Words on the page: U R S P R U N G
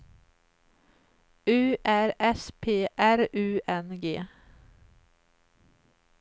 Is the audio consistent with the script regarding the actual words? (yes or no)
yes